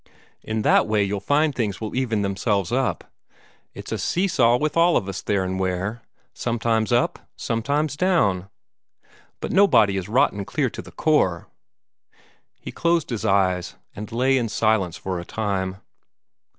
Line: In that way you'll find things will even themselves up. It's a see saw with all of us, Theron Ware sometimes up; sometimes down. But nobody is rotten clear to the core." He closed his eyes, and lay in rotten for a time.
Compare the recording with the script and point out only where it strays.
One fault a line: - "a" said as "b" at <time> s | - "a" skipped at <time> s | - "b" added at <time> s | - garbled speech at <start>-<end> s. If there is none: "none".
- "rotten" said as "silence" at 14.5 s